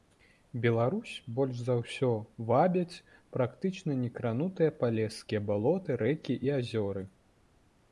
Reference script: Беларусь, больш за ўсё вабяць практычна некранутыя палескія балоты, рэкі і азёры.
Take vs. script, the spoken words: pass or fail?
pass